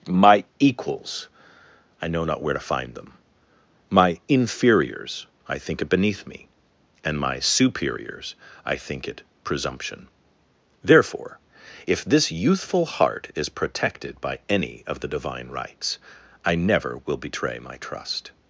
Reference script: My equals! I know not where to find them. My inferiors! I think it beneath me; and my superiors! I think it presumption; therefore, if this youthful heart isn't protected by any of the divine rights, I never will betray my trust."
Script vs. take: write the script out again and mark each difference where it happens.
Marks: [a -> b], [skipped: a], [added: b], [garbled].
My equals! I know not where to find them. My inferiors! I think it beneath me; and my superiors! I think it presumption; therefore, if this youthful heart [isn't -> is] protected by any of the divine rights, I never will betray my trust."